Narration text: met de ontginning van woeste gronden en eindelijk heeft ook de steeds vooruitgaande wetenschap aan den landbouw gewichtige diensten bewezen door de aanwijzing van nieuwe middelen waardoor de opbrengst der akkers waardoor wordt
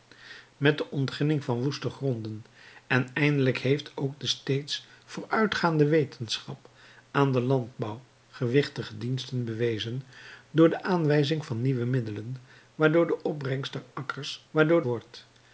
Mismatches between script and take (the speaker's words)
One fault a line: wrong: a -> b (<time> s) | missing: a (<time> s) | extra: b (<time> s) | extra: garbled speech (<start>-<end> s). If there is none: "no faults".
no faults